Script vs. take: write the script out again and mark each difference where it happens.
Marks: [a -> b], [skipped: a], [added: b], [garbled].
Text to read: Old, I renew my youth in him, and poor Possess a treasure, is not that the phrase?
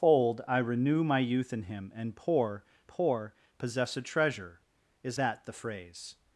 Old, I renew my youth in him, and poor [added: poor] Possess a treasure, is [skipped: not] that the phrase?